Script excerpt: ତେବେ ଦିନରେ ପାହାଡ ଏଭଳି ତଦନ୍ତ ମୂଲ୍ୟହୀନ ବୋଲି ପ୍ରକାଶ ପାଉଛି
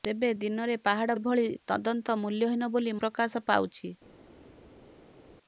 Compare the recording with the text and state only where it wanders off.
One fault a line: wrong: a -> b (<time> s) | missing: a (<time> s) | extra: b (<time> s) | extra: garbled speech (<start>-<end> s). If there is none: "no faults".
no faults